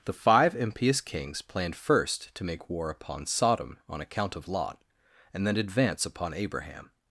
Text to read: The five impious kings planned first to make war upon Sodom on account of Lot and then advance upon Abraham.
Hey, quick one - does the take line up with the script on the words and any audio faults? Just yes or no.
yes